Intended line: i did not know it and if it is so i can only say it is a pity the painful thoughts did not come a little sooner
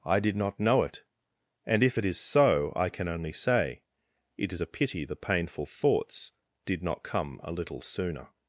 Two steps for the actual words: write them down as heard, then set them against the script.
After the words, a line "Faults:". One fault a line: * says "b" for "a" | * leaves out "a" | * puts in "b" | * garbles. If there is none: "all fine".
i did not know it and if it is so i can only say it is a pity the painful thoughts did not come a little sooner
Faults:
all fine